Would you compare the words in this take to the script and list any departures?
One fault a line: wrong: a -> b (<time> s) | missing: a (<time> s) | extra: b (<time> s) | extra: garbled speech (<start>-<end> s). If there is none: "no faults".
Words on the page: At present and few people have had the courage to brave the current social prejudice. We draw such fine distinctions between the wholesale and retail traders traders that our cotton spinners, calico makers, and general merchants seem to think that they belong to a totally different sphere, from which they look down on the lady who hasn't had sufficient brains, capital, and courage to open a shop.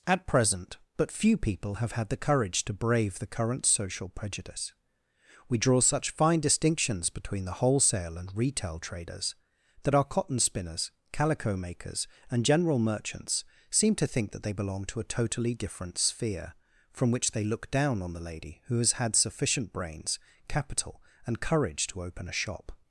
wrong: and -> but (1.0 s)
missing: traders (9.3 s)
wrong: hasn't -> has (18.8 s)